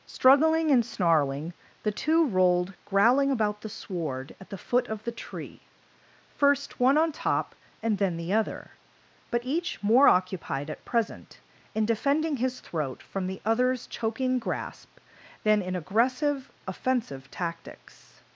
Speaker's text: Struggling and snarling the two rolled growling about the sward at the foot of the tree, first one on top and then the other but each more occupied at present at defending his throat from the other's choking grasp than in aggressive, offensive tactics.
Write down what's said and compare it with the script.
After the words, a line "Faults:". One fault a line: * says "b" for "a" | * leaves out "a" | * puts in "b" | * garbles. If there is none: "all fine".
Struggling and snarling the two rolled growling about the sward at the foot of the tree, first one on top and then the other but each more occupied at present in defending his throat from the other's choking grasp than in aggressive, offensive tactics.
Faults:
* says "in" for "at"